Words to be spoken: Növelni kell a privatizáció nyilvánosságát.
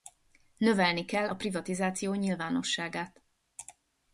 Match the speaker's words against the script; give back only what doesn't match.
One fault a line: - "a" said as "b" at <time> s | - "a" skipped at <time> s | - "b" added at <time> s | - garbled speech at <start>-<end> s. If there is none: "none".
none